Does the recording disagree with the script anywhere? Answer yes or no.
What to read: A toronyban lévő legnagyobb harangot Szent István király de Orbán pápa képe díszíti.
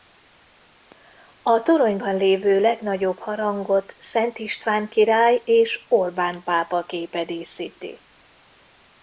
yes